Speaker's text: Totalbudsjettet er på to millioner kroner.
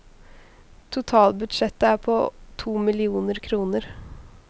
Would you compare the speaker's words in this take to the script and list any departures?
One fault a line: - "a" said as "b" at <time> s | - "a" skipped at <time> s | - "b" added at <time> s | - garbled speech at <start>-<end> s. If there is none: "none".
none